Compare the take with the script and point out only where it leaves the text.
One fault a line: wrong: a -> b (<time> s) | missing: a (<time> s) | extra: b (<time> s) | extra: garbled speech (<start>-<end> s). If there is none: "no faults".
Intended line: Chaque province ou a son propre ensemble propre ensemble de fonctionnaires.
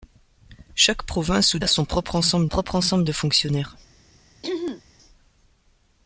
no faults